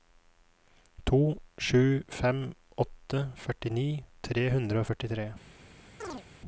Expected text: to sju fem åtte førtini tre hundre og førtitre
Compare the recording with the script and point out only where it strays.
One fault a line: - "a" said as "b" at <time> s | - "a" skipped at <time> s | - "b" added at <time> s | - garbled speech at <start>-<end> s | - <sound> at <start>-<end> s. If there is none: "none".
- chirp at 6.0-6.2 s